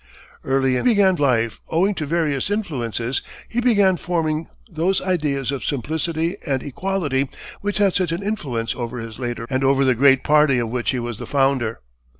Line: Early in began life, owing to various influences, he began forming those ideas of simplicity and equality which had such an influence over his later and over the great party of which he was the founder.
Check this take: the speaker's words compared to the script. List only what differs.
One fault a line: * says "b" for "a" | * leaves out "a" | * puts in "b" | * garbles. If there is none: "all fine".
all fine